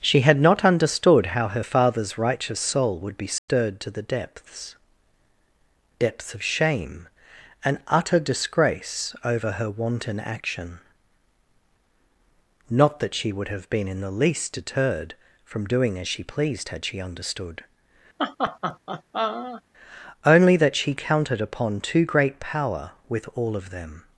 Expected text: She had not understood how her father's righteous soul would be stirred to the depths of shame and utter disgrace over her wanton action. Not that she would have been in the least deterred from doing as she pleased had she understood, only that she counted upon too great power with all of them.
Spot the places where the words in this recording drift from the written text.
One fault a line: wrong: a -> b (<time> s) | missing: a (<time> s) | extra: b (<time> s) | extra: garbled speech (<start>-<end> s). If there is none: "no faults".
extra: depths (6.0 s)